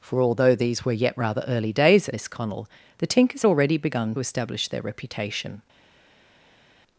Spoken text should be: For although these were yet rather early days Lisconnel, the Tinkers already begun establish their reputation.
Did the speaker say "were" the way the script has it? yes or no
yes